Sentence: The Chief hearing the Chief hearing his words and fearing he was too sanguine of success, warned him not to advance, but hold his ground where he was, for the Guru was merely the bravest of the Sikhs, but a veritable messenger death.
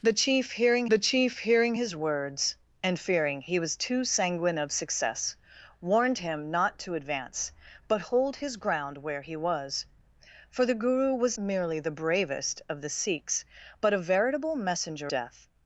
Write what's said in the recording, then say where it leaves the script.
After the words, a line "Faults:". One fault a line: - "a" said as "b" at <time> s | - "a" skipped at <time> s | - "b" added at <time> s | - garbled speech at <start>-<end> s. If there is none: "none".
The Chief hearing the Chief hearing his words and fearing he was too sanguine of success, warned him not to advance, but hold his ground where he was, for the Guru was merely the bravest of the Sikhs, but a veritable messenger death.
Faults:
none